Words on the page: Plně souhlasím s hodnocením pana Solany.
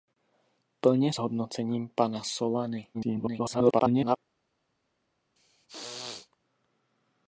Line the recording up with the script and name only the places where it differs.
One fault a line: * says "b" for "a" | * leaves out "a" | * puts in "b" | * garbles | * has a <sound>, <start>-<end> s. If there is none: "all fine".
* leaves out "souhlasím"
* garbles
* has a throat clearing, 5.4-6.4 s